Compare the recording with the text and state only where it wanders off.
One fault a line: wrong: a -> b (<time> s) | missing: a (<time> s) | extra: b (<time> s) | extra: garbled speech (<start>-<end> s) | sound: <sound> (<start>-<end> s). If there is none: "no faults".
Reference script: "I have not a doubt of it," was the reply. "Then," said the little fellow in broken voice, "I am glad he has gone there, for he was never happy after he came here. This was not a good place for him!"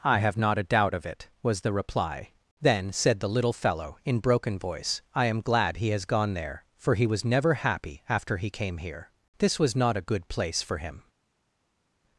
no faults